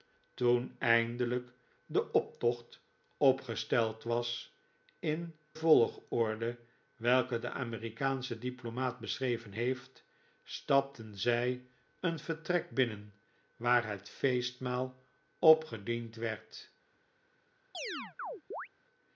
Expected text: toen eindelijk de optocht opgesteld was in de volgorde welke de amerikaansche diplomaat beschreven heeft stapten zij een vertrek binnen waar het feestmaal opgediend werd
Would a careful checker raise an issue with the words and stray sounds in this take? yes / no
yes